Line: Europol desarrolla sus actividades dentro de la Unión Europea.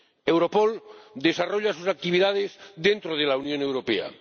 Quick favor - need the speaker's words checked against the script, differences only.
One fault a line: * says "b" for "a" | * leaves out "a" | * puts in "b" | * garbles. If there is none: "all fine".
all fine